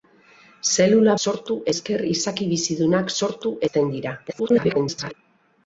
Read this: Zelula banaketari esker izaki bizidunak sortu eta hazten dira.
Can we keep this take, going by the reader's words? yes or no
no